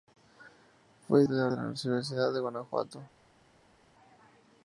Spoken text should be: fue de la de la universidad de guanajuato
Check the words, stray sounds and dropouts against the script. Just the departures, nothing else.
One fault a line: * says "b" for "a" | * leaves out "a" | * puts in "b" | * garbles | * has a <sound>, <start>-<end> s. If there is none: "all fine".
all fine